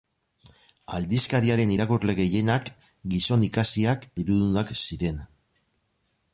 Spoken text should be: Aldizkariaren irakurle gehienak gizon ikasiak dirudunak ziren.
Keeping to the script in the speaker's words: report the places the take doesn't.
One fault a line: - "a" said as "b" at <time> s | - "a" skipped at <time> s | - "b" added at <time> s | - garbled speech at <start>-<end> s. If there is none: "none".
none